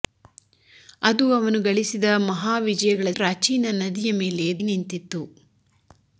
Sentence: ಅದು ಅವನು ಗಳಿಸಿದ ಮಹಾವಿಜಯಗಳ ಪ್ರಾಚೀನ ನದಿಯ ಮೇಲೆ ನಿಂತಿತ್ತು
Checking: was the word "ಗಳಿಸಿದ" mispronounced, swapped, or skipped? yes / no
no